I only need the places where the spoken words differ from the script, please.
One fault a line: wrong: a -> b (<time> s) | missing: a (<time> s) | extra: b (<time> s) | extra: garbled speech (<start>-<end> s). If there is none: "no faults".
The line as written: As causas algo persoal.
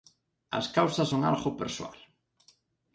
extra: son (1.1 s)